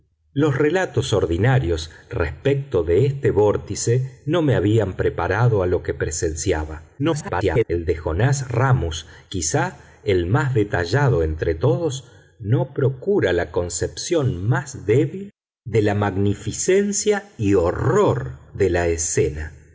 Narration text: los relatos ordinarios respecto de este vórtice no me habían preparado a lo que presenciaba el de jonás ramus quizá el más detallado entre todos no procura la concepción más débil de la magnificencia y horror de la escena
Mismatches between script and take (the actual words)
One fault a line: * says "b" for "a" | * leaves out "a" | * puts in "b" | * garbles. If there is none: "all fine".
* garbles